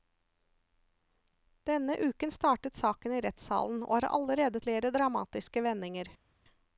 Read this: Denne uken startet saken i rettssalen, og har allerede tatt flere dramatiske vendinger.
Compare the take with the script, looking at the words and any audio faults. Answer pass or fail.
fail